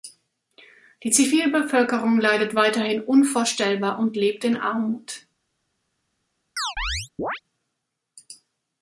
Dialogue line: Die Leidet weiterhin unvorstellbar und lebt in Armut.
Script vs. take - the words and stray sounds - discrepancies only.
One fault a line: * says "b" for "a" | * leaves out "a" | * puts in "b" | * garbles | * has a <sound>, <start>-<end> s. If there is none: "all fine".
* puts in "Zivilbevölkerung"
* has a chirp, 6.6-7.4 s